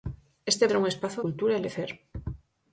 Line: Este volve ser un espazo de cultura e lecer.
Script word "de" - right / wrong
wrong